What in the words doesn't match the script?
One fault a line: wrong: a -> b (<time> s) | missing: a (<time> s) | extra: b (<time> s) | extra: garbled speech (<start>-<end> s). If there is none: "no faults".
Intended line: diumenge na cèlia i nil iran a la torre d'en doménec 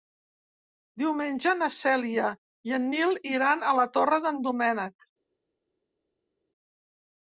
extra: en (2.8 s)